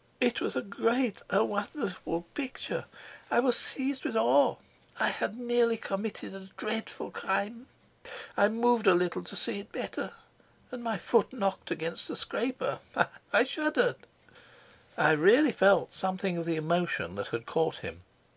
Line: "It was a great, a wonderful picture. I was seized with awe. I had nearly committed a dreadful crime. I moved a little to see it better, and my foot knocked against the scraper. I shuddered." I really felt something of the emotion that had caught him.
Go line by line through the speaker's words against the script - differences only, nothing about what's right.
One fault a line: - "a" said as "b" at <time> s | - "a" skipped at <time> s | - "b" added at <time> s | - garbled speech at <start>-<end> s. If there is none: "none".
none